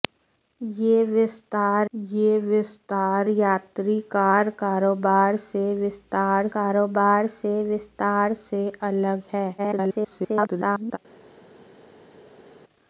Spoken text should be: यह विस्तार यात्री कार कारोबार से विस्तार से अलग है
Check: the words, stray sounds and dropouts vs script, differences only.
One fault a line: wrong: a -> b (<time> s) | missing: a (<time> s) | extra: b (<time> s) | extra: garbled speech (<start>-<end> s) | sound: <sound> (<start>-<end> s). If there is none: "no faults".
extra: यह विस्तार (1.9 s)
extra: कारोबार से विस्तार (6.5 s)
extra: garbled speech (9.6-11.0 s)